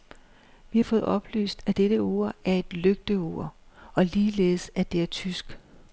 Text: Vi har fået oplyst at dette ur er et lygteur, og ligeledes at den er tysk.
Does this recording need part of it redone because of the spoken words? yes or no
yes